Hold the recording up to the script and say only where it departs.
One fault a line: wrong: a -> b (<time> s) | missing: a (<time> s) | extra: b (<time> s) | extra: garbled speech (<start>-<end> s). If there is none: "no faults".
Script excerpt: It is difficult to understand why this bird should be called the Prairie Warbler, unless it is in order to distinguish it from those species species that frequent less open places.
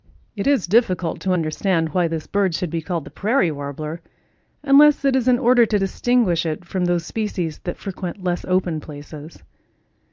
missing: species (7.6 s)